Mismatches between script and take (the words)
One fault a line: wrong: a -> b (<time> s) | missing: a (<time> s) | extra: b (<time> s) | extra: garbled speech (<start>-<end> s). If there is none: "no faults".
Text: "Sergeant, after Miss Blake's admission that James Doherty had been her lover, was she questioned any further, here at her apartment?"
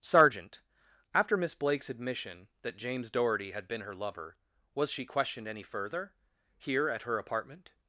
no faults